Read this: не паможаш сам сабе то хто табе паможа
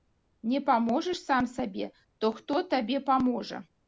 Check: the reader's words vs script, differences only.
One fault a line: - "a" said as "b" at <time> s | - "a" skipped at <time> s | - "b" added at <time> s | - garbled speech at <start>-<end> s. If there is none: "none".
none